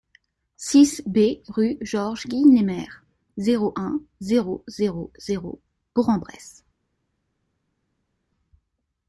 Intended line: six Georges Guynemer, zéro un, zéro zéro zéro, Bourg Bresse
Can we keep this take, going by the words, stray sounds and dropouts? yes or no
no